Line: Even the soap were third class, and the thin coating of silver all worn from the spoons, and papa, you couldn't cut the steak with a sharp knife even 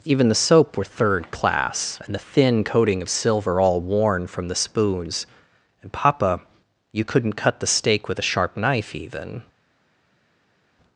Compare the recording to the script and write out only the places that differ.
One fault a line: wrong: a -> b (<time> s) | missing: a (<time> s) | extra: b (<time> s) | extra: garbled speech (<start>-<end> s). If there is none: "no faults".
no faults